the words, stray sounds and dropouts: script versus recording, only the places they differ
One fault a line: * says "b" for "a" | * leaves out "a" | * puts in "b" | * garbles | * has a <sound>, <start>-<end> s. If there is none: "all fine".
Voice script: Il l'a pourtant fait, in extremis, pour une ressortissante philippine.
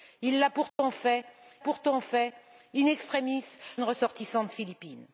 * has a dropout, 0.7-0.8 s
* puts in "pourtant fait"
* leaves out "pour"